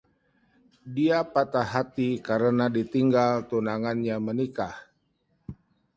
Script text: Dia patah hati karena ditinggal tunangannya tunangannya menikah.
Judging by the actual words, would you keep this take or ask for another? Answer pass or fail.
fail